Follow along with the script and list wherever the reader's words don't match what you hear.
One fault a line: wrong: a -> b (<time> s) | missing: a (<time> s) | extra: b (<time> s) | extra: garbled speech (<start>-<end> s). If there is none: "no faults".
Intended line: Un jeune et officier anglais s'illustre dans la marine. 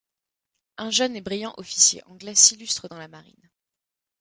extra: brillant (1.2 s)